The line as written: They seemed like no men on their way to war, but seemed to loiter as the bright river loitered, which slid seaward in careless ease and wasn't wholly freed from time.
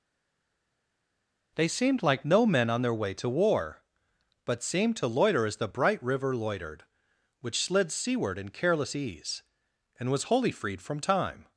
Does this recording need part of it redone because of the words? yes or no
yes